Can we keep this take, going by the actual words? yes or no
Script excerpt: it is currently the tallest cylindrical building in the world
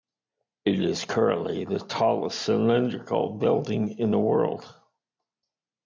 yes